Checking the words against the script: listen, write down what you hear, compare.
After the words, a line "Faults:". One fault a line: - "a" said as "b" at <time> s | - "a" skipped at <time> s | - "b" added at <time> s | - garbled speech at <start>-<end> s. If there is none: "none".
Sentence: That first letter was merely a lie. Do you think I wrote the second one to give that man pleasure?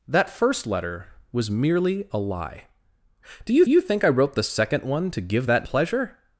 That first letter was merely a lie. Do you you think I wrote the second one to give that pleasure?
Faults:
- "you" added at 3.7 s
- "man" skipped at 5.7 s